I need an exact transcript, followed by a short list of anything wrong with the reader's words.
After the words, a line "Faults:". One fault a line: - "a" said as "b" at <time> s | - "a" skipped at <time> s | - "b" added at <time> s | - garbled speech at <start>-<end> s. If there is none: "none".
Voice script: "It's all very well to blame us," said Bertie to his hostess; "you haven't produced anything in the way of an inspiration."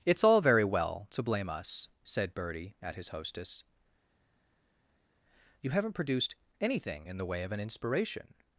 "It's all very well to blame us," said Bertie at his hostess; "you haven't produced anything in the way of an inspiration."
Faults:
- "to" said as "at" at 2.8 s